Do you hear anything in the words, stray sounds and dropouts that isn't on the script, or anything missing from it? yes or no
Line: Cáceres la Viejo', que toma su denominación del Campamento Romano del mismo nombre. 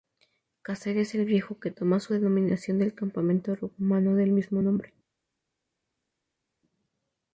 yes